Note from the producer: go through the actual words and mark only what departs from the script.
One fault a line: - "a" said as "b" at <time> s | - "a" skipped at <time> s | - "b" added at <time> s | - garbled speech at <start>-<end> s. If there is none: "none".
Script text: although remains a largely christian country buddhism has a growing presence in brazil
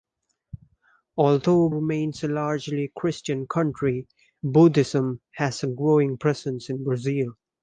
none